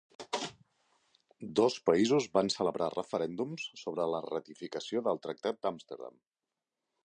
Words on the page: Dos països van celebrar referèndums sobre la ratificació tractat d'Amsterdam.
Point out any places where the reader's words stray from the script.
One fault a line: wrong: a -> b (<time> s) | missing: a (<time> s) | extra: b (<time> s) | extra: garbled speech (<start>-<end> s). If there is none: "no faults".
extra: del (5.1 s)